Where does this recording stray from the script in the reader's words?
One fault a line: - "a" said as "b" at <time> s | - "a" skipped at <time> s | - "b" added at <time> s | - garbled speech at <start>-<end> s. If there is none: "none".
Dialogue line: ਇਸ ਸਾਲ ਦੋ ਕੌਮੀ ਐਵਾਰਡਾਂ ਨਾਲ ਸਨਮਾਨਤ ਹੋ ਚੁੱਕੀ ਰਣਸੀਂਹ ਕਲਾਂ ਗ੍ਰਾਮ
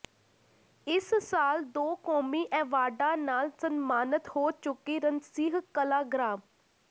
none